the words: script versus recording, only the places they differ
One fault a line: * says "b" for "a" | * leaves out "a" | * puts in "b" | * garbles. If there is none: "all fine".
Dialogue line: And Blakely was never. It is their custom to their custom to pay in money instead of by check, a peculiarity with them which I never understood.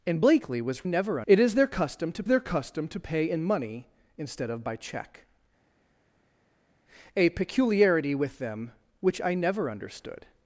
all fine